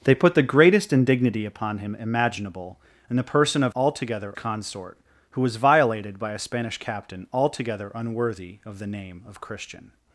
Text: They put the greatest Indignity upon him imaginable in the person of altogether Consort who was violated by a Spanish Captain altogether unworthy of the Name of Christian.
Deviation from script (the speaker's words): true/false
false